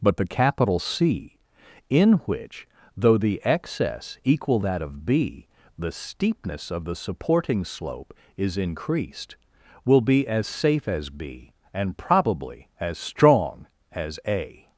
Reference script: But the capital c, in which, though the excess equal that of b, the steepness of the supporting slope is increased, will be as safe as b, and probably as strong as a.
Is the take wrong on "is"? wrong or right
right